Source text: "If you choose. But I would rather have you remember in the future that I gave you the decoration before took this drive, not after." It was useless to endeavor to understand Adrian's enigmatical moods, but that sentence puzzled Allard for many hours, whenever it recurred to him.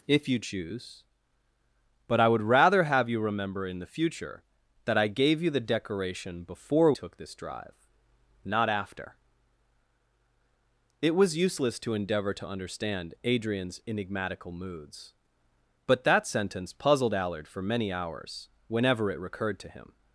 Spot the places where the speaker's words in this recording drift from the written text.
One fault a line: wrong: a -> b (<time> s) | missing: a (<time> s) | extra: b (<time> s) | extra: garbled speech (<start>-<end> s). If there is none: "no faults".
no faults